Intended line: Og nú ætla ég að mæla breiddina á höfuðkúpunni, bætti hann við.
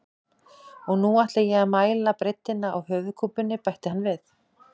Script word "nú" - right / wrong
right